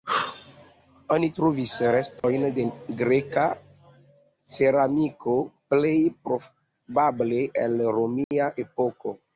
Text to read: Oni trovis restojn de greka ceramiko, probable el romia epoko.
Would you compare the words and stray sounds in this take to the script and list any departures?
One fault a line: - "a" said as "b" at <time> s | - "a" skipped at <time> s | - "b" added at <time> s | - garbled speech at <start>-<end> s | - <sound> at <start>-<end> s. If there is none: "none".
- dropout at 2.2-2.2 s
- "plej" added at 5.7 s
- dropout at 8.2-8.3 s